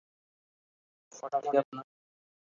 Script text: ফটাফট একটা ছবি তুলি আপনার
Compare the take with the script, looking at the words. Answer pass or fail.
fail